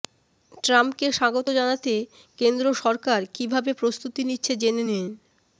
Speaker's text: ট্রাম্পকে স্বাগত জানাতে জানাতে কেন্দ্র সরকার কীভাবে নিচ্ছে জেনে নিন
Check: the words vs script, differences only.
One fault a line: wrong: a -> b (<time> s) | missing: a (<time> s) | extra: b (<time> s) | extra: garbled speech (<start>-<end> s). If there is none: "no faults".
missing: জানাতে (1.9 s)
extra: প্রস্তুতি (3.8 s)